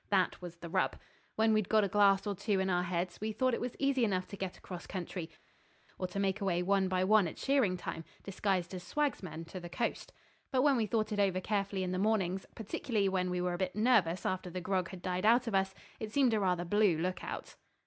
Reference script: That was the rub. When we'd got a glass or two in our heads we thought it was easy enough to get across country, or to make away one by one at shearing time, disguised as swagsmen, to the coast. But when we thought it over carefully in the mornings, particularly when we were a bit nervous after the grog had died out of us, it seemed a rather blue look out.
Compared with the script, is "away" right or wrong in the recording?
right